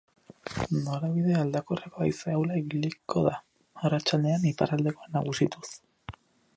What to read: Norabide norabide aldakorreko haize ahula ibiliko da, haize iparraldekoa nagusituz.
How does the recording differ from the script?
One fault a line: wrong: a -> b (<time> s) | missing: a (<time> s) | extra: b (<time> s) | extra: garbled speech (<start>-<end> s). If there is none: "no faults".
missing: norabide (1.4 s)
wrong: haize -> arratsaldean (3.9 s)